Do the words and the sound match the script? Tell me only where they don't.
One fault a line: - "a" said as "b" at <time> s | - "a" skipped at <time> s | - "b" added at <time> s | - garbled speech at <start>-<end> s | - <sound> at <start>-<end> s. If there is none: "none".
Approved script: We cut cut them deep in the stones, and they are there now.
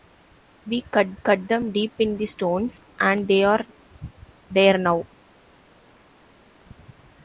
none